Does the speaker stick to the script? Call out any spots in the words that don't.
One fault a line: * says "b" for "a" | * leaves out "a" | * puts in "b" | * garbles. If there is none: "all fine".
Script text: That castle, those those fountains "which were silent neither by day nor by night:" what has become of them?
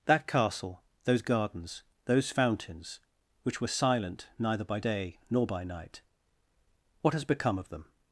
* puts in "gardens"